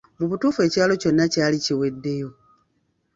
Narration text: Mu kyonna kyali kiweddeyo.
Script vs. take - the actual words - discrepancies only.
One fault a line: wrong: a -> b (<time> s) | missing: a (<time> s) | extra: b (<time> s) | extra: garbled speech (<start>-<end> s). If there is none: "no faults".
extra: butuufu ekyalo (0.3 s)